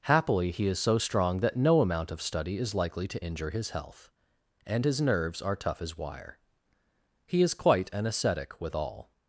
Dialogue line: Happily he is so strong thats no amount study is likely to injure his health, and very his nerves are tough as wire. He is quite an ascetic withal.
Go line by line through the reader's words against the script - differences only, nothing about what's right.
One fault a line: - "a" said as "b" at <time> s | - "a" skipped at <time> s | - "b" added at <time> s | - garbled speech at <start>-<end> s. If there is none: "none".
- "thats" said as "that" at 1.4 s
- "of" added at 2.1 s
- "very" skipped at 4.9 s